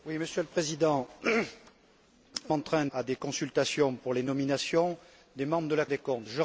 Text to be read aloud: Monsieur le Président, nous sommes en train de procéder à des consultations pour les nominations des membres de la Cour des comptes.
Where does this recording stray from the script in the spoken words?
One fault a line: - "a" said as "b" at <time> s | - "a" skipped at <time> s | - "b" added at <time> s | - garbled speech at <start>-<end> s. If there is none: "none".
- "nous sommes" skipped at 1.1 s
- "de procéder" skipped at 2.9 s
- "Cour" skipped at 5.8 s